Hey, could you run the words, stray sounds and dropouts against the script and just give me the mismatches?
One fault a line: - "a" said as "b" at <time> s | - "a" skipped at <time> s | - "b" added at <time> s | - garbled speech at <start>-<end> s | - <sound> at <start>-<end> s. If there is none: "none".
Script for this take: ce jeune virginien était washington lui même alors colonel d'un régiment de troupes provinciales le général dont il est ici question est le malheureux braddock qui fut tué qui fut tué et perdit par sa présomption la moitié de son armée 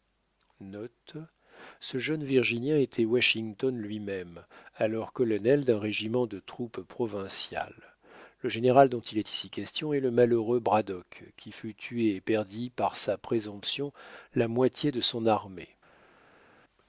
- "qui fut tué" skipped at 12.1 s